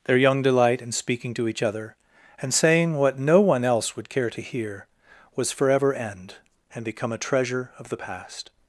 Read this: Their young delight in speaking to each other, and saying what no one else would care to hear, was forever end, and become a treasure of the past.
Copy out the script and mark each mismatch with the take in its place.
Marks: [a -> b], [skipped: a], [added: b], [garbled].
Their young delight in speaking to each other, and saying what no one else would care to hear, was forever end, and become a treasure of the past.